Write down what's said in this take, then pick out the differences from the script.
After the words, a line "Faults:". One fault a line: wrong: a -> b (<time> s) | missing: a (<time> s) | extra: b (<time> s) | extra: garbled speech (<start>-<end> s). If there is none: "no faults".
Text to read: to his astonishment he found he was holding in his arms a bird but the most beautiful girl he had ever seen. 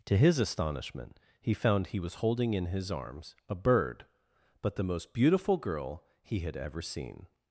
to his astonishment he found he was holding in his arms a bird but the most beautiful girl he had ever seen.
Faults:
no faults